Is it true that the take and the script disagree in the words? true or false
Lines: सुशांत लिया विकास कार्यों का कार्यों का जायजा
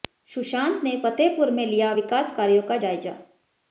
true